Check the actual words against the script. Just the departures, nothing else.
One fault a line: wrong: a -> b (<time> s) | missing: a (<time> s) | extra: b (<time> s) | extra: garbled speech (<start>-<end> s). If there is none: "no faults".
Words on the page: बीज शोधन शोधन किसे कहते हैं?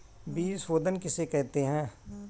missing: शोधन (1.0 s)